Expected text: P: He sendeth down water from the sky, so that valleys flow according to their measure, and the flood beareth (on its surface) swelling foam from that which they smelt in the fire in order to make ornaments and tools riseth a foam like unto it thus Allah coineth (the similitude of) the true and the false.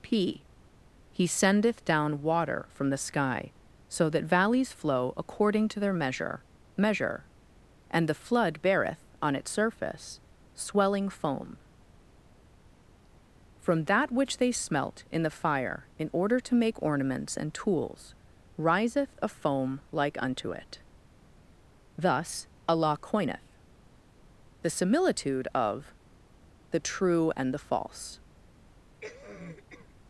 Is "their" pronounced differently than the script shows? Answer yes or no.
no